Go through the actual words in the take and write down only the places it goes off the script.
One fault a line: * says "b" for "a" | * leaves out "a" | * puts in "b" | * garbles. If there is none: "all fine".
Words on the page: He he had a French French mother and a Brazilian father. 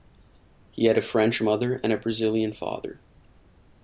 * leaves out "he"
* leaves out "French"